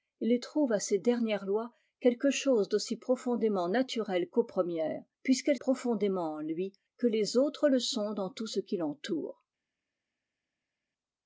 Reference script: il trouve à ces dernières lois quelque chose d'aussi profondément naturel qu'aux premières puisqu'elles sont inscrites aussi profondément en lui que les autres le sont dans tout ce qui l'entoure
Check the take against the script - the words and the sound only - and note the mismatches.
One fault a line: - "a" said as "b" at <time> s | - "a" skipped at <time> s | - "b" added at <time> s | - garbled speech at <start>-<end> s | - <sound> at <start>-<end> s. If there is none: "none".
- "sont inscrites aussi" skipped at 5.6 s